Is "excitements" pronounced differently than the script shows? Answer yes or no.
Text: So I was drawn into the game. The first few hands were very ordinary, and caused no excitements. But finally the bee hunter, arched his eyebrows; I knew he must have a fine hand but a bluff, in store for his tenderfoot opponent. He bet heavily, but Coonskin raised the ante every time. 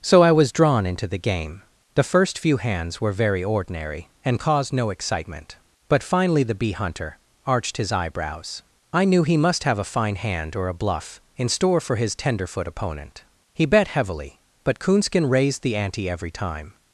yes